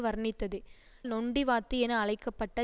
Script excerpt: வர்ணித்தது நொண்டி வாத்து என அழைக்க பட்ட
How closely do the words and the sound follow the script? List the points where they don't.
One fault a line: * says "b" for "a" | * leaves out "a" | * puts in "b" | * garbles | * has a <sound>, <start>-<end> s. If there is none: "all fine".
all fine